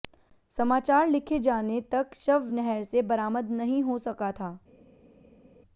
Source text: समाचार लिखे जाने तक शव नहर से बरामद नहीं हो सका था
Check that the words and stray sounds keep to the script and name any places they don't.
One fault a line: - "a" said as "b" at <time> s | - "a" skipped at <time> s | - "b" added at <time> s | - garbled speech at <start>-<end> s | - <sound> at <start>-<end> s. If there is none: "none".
none